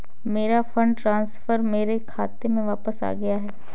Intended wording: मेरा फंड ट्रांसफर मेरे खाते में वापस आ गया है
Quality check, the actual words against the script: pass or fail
pass